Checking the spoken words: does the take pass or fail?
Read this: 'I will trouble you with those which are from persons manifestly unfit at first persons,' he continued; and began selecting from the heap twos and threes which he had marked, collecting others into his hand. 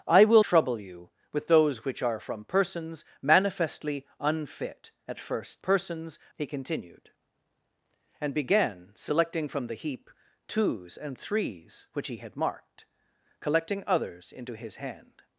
pass